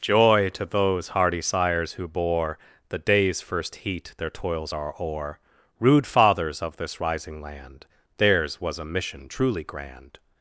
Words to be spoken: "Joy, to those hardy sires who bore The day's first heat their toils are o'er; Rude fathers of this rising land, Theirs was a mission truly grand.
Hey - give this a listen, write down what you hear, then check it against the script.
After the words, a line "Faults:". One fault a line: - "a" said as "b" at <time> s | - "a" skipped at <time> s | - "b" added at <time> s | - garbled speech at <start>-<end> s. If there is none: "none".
"Joy, to those hardy sires who bore The day's first heat their toils are o'er; Rude fathers of this rising land, Theirs was a mission truly grand.
Faults:
none